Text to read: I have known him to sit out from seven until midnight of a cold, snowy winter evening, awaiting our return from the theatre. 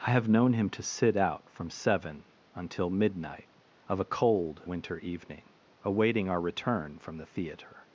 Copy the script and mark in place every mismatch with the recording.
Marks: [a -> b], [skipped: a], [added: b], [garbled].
I have known him to sit out from seven until midnight of a cold, [skipped: snowy] winter evening, awaiting our return from the theatre.